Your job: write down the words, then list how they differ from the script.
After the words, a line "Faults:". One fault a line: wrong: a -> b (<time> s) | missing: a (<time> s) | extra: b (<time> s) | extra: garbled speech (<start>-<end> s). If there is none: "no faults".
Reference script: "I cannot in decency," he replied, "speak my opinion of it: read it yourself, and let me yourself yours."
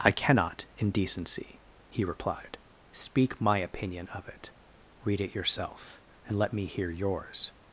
"I cannot in decency," he replied, "speak my opinion of it: read it yourself, and let me hear yours."
Faults:
wrong: yourself -> hear (6.7 s)